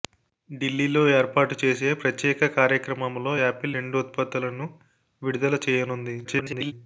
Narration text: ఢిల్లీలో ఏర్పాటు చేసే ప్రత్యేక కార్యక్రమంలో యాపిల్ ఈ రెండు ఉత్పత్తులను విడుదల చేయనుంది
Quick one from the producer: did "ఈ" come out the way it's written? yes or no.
no